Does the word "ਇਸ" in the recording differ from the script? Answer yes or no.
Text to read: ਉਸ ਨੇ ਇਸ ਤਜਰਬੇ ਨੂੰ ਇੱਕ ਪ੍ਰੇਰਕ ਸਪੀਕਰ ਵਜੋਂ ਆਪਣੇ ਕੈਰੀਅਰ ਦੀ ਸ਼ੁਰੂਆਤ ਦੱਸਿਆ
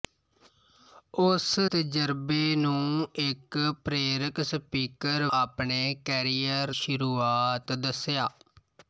yes